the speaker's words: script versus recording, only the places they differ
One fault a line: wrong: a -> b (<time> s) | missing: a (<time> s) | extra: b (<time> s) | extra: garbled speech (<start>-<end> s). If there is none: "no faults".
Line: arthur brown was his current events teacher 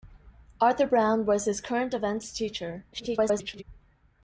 extra: garbled speech (2.9-3.6 s)